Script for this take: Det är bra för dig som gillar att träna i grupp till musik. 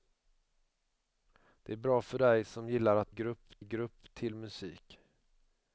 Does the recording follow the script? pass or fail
fail